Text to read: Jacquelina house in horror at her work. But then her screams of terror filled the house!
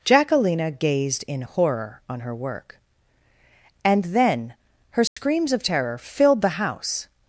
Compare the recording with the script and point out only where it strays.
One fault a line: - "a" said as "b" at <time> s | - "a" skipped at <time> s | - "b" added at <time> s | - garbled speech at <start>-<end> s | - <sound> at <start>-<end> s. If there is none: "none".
- "house" said as "gazed" at 0.7 s
- "at" said as "on" at 2.1 s
- "But" said as "And" at 3.8 s
- dropout at 5.1-5.2 s